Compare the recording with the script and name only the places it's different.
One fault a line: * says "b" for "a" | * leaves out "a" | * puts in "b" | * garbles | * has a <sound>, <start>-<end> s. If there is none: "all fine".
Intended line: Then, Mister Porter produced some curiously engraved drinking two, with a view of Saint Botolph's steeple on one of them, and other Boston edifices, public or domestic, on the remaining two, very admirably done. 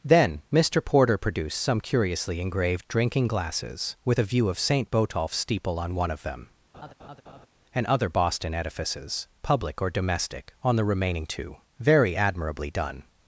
* says "glasses" for "two"
* has a laugh, 6.7-7.5 s